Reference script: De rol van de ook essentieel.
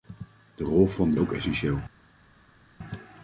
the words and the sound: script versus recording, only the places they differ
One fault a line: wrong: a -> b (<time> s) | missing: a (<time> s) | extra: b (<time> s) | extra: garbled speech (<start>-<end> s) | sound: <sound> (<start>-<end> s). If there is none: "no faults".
no faults